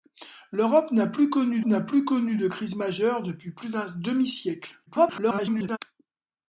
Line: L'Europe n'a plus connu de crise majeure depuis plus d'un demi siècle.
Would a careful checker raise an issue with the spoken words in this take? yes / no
yes